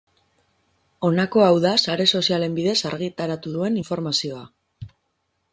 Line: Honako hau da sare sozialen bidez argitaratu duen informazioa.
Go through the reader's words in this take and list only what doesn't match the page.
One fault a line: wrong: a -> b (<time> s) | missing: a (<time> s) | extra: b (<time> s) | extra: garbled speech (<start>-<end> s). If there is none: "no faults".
no faults